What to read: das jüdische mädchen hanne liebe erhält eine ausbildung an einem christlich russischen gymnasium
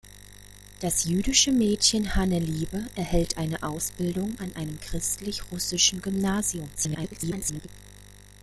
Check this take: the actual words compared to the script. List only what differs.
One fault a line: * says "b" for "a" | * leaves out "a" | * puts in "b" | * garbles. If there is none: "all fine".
* garbles